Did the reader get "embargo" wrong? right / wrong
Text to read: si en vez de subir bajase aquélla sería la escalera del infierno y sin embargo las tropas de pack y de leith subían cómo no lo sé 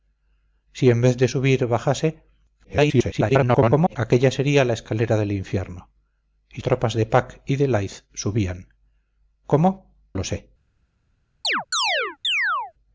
wrong